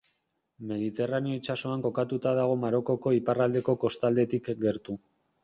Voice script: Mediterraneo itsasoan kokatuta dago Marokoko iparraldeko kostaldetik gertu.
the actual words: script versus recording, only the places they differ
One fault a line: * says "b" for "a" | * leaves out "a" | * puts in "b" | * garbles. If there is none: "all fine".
all fine